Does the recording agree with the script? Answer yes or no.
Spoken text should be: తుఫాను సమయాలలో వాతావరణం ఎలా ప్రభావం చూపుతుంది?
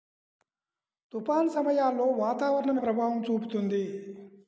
no